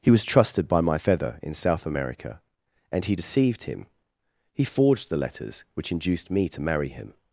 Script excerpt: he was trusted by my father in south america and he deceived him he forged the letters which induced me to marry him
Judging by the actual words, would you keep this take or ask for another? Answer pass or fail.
fail